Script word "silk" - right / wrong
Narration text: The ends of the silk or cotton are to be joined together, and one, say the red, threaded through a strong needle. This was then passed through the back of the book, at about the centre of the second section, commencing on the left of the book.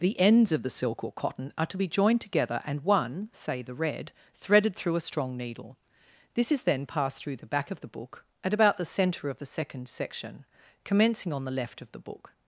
right